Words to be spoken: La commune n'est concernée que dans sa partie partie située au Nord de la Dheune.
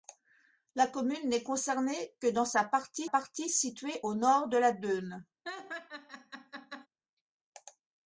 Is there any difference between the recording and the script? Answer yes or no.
no